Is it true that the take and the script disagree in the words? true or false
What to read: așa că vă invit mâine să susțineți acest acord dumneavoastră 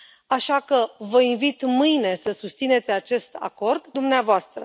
false